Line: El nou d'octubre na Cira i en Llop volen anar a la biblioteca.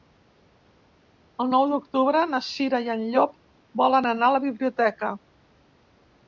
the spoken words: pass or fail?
pass